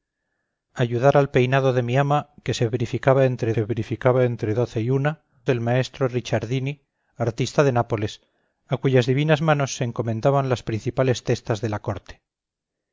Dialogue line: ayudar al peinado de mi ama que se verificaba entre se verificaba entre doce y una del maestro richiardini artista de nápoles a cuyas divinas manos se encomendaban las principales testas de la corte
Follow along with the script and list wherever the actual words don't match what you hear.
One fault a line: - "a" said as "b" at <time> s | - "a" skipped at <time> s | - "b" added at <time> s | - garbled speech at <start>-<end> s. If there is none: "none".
none